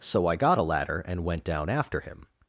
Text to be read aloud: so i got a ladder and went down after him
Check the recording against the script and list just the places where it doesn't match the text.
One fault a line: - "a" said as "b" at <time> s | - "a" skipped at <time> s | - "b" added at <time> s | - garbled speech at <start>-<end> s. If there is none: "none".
none